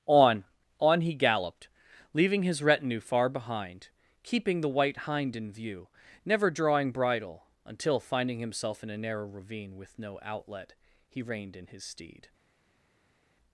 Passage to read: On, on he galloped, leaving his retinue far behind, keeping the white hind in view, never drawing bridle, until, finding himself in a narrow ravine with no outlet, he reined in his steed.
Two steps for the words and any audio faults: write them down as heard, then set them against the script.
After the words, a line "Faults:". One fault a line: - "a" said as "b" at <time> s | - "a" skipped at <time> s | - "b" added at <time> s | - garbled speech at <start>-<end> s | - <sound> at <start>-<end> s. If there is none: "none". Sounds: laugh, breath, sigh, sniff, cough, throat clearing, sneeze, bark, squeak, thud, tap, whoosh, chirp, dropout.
On, on he galloped, leaving his retinue far behind, keeping the white hind in view, never drawing bridle, until, finding himself in a narrow ravine with no outlet, he reined in his steed.
Faults:
none